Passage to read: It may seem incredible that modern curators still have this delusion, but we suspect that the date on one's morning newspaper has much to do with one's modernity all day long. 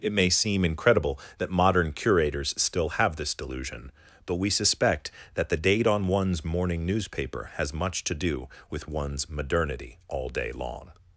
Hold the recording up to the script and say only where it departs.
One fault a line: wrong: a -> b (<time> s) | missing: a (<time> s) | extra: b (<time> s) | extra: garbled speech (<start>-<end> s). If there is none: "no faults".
no faults